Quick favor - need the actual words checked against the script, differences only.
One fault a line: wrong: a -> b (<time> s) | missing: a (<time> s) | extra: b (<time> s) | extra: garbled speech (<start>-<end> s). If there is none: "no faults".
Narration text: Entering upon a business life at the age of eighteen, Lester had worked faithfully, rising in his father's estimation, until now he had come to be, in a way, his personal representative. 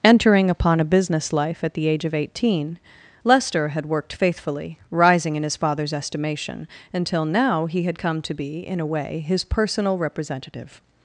no faults